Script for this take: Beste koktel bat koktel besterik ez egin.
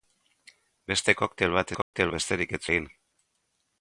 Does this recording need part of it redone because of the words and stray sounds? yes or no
yes